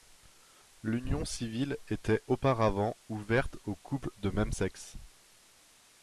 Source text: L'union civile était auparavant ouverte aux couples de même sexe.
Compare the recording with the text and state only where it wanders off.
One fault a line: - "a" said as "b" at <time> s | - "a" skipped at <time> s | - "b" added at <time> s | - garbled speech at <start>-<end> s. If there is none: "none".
none